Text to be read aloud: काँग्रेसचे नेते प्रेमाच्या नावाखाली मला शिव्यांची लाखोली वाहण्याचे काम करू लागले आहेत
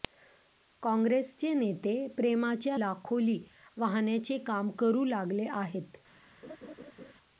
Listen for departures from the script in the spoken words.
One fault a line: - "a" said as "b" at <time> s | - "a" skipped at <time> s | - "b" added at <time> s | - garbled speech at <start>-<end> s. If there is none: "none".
- "नावाखाली मला शिव्यांची" skipped at 2.8 s